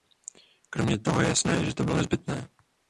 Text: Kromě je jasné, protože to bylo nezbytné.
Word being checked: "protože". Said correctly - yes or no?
no